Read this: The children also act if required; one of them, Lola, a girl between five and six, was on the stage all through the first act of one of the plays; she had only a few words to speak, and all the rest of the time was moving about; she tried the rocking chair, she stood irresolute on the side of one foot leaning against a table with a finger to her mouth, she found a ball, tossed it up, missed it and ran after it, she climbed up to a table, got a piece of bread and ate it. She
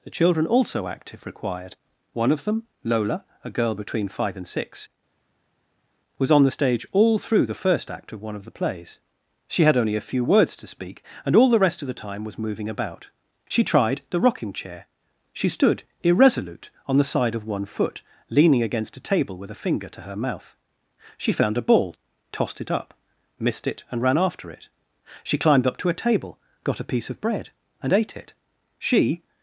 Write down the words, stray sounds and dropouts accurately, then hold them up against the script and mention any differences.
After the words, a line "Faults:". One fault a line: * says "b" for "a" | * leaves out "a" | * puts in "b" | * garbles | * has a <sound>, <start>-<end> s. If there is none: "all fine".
The children also act if required; one of them, Lola, a girl between five and six, was on the stage all through the first act of one of the plays; she had only a few words to speak, and all the rest of the time was moving about; she tried the rocking chair, she stood irresolute on the side of one foot leaning against a table with a finger to her mouth, she found a ball, tossed it up, missed it and ran after it, she climbed up to a table, got a piece of bread and ate it. She
Faults:
all fine